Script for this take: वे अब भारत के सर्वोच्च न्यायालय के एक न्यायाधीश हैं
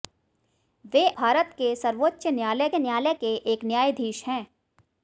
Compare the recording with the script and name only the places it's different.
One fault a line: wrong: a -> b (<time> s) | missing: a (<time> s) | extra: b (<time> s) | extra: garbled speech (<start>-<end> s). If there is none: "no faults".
missing: अब (1.1 s)
extra: न्यायालय (2.8 s)